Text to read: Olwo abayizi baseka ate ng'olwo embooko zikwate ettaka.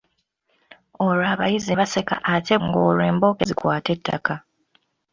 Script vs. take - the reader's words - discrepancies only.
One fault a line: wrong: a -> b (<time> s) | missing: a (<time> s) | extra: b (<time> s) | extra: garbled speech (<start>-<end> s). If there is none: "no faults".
no faults